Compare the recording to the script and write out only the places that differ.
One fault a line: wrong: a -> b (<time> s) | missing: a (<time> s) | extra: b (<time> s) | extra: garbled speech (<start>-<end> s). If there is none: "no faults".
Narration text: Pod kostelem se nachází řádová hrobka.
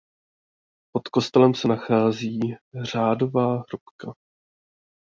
no faults